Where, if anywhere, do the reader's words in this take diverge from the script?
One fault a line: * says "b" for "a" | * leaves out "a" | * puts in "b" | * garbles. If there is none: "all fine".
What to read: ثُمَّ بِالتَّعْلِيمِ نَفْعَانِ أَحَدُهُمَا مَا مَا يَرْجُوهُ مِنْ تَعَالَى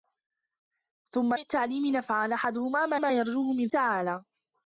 all fine